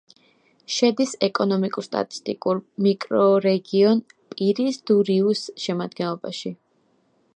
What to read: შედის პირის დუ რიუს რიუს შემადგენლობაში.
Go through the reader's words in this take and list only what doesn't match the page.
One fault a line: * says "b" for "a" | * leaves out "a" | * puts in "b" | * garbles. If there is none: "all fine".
* puts in "ეკონომიკურ სტატისტიკურ მიკრორეგიონ"
* leaves out "რიუს"